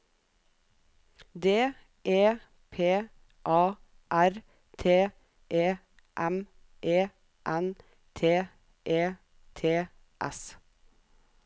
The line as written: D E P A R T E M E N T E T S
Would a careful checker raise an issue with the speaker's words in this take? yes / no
no